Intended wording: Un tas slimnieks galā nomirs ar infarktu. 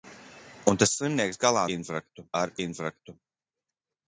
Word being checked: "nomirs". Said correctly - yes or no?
no